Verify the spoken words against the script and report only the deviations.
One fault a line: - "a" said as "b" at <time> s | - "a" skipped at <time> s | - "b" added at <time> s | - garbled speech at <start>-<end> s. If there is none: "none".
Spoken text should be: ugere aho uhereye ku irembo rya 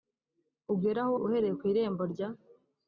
none